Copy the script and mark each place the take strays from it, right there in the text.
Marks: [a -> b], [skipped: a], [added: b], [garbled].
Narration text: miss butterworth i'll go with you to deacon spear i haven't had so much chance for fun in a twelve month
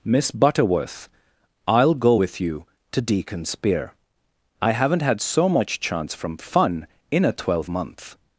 miss butterworth i'll go with you to deacon spear i haven't had so much chance [for -> from] fun in a twelve month